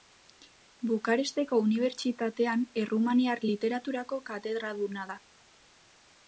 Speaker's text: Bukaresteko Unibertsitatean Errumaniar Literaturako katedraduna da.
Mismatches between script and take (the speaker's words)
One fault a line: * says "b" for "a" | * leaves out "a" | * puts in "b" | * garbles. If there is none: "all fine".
all fine